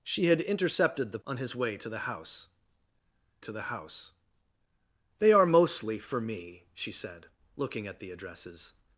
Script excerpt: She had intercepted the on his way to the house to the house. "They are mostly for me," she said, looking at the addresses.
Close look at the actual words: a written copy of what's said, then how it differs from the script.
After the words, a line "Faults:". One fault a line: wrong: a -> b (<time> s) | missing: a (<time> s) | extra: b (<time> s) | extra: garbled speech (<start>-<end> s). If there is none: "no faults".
She had intercepted the on his way to the house to the house. "They are mostly for me," she said, looking at the addresses.
Faults:
no faults